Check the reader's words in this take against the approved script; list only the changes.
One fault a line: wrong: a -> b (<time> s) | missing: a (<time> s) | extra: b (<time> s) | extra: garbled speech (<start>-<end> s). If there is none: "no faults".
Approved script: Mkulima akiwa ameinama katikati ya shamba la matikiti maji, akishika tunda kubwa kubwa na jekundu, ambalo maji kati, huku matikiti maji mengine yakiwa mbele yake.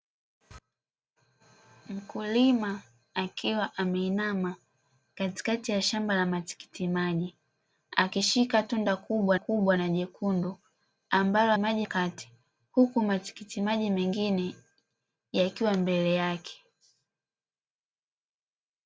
no faults